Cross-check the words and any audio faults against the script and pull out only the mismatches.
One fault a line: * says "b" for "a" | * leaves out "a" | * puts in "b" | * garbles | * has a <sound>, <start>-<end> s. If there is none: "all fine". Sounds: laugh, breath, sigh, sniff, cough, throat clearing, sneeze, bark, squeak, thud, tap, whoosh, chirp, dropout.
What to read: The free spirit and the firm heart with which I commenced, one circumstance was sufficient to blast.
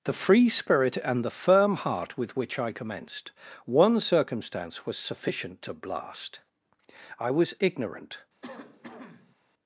* puts in "I was ignorant"
* has a cough, 8.4-9.4 s